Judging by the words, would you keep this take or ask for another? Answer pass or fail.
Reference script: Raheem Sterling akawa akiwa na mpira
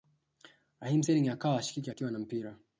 fail